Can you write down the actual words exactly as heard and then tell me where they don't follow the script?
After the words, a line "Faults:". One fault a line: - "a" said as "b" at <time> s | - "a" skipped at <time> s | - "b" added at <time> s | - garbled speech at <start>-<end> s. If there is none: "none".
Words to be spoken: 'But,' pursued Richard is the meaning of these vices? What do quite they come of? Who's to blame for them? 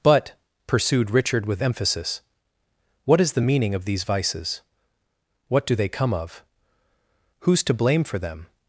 'But,' pursued Richard with emphasis, 'what is the meaning of these vices? What do they come of? Who's to blame for them?
Faults:
- "with emphasis what" added at 1.4 s
- "quite" skipped at 5.7 s